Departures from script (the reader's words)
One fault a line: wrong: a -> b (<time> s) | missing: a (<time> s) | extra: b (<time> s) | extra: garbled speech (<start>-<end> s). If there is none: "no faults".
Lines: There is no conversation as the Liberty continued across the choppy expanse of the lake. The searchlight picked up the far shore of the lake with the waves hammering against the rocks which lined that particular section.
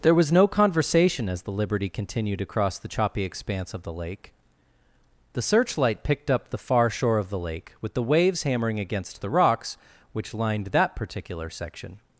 wrong: is -> was (0.1 s)